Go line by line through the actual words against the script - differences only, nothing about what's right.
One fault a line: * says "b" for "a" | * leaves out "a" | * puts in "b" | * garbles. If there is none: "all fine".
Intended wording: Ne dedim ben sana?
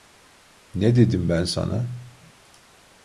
all fine